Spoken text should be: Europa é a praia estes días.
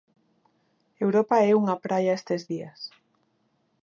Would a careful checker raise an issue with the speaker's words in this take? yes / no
yes